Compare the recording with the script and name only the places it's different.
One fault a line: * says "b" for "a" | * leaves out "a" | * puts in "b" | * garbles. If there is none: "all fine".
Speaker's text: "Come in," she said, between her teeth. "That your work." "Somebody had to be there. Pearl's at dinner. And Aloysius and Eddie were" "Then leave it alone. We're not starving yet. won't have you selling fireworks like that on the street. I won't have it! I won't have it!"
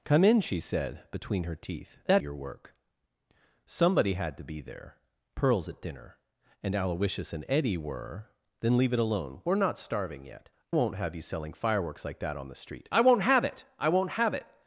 all fine